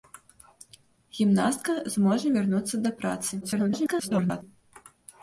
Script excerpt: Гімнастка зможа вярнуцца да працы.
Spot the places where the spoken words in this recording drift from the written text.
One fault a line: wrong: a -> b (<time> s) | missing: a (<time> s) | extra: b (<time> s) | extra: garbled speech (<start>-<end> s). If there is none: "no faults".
extra: garbled speech (3.4-4.4 s)